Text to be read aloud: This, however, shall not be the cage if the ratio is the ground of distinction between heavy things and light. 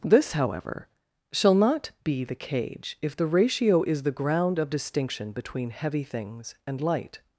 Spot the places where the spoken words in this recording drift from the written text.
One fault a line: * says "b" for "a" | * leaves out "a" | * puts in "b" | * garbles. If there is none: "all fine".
all fine